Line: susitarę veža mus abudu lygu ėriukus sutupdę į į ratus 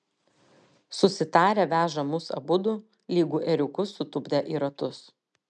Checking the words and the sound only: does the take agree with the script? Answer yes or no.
no